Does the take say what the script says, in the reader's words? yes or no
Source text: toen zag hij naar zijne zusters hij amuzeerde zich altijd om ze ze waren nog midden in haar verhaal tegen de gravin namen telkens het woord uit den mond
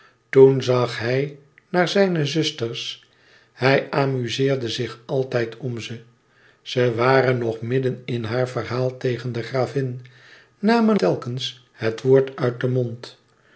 yes